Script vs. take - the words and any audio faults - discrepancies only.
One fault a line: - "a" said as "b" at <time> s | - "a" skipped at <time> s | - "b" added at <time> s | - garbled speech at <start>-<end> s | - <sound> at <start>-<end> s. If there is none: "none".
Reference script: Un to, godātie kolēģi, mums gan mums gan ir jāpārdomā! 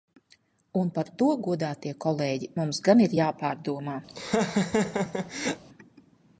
- "par" added at 1.0 s
- "mums gan" skipped at 3.0 s
- laugh at 4.1-5.6 s